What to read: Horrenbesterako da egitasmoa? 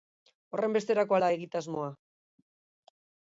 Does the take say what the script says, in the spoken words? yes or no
yes